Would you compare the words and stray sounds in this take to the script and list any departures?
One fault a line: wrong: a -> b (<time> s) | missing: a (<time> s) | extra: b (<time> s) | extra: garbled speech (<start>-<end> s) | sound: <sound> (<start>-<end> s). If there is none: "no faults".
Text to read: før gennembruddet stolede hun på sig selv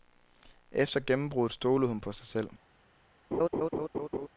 wrong: før -> efter (0.7 s)
sound: laugh (3.3-4.3 s)